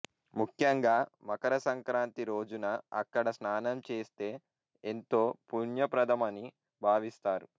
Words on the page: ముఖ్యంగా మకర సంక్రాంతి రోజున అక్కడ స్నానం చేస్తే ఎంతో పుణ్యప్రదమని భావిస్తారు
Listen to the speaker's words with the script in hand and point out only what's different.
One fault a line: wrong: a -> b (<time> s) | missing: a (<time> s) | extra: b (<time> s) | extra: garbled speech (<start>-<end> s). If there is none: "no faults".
no faults